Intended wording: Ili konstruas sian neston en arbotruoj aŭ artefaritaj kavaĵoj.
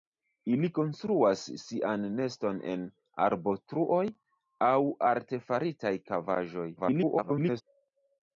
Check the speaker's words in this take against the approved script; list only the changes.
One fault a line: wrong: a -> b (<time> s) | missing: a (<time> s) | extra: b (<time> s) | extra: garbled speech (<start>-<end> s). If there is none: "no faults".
extra: garbled speech (6.8-7.6 s)